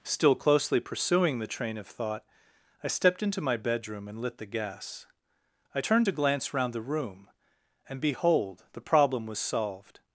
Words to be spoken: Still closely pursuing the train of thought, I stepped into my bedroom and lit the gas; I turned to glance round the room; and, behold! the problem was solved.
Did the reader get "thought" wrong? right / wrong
right